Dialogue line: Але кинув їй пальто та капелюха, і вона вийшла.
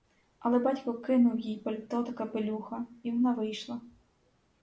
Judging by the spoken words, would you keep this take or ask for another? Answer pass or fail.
fail